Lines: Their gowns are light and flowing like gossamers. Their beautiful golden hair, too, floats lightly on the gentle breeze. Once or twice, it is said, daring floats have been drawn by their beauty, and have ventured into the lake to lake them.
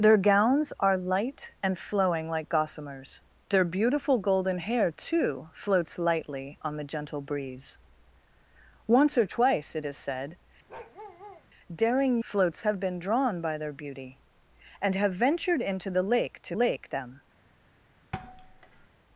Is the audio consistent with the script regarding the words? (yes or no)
yes